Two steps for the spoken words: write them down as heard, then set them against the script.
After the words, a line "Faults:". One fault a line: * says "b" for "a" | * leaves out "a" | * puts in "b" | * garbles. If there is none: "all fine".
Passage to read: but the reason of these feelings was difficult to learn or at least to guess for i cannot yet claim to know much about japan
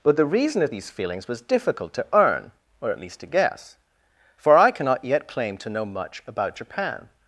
but the reason of these feelings was difficult to earn or at least to guess for i cannot yet claim to know much about japan
Faults:
* says "earn" for "learn"